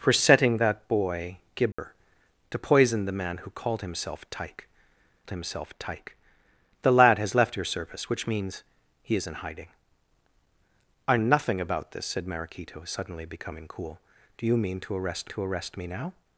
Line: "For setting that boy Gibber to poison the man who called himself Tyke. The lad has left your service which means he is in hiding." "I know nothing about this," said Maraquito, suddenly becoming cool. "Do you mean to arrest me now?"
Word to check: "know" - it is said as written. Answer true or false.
false